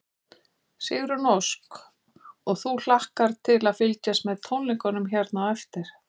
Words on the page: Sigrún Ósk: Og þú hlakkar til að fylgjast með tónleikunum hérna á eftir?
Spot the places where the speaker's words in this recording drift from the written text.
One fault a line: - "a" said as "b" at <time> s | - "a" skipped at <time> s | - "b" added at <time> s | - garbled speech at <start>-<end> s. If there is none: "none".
none